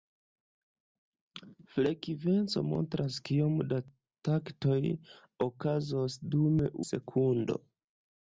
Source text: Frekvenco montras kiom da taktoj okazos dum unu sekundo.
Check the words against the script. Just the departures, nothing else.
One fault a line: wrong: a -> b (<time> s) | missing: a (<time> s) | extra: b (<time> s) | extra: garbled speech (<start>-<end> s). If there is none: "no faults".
missing: unu (6.6 s)